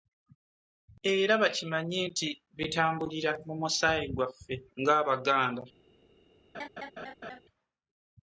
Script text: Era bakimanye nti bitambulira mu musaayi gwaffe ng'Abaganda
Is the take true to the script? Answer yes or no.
yes